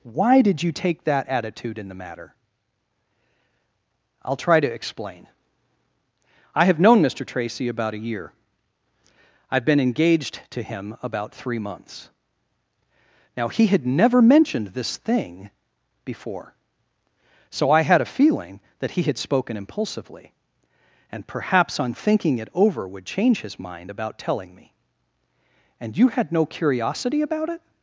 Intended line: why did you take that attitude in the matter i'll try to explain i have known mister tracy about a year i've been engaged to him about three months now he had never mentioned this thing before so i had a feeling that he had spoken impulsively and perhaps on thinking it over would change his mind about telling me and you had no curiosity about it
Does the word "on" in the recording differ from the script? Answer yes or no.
no